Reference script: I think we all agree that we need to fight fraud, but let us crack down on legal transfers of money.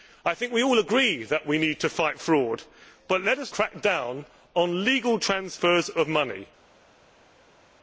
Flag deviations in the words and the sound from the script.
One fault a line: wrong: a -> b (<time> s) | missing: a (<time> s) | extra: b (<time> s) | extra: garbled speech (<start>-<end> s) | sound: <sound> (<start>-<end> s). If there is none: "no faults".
no faults